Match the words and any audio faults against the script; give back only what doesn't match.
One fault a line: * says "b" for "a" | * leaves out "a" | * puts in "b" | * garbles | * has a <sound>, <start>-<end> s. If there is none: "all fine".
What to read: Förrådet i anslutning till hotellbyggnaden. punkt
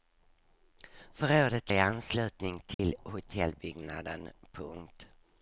* has a dropout, 2.7-2.8 s